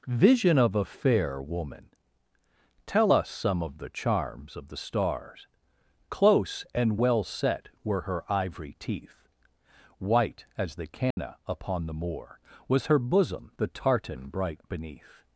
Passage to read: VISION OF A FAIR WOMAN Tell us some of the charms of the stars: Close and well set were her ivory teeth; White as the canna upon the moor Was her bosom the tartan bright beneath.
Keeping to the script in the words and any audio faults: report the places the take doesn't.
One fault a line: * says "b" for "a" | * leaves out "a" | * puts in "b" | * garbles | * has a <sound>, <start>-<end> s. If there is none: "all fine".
* has a dropout, 11.1-11.2 s